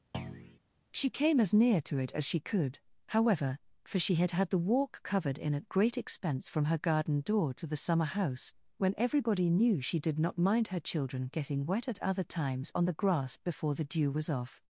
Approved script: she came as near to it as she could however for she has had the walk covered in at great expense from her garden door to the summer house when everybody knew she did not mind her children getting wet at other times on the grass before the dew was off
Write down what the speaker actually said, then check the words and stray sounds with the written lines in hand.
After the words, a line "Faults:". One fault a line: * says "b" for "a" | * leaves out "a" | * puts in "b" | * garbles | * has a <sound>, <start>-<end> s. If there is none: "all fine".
she came as near to it as she could however for she had had the walk covered in at great expense from her garden door to the summer house when everybody knew she did not mind her children getting wet at other times on the grass before the dew was off
Faults:
* has a thud, 0.1-0.6 s
* says "had" for "has"